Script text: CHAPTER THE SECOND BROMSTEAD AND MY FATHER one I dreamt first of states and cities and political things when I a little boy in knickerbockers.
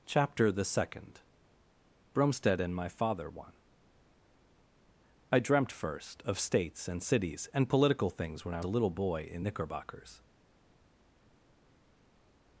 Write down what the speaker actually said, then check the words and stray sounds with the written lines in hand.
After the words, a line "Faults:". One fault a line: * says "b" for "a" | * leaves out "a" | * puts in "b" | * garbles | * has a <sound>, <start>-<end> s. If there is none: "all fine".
CHAPTER THE SECOND BROMSTEAD AND MY FATHER one I dreamt first of states and cities and political things when I a little boy in knickerbockers.
Faults:
all fine